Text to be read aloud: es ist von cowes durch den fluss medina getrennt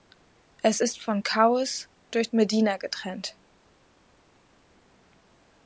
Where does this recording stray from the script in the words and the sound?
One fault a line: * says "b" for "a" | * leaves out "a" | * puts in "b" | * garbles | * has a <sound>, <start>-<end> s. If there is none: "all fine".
* leaves out "den fluss"